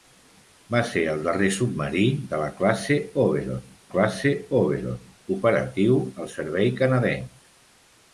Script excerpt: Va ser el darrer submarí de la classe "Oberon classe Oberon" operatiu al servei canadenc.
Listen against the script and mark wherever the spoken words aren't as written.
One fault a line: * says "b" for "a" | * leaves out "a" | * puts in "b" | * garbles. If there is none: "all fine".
all fine